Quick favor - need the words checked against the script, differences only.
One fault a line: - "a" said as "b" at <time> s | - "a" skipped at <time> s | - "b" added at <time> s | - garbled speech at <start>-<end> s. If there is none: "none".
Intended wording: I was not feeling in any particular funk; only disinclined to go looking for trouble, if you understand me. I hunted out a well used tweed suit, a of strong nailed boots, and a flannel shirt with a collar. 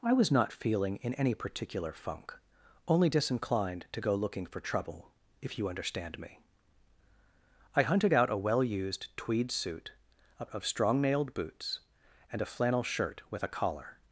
none